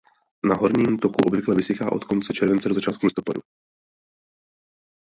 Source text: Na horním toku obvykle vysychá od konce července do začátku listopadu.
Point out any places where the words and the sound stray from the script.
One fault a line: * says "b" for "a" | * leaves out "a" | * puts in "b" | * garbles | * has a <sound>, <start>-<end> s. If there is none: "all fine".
all fine